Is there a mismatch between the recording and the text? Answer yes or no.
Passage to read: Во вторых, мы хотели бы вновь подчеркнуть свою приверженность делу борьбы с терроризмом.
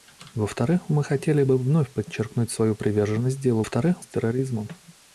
yes